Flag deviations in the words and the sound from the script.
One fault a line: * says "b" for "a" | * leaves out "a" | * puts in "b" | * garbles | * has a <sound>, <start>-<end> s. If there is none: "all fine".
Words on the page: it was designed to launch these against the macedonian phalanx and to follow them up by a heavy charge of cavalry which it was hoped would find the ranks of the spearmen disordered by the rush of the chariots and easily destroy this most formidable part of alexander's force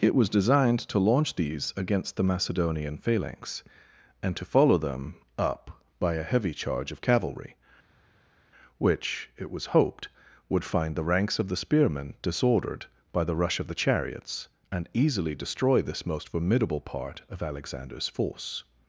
all fine